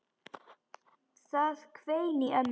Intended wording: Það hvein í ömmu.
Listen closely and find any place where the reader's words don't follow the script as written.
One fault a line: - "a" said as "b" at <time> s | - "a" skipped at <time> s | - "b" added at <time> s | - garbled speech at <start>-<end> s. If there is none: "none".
none